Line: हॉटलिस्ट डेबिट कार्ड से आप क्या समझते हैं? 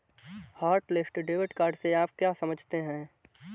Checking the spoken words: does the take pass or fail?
pass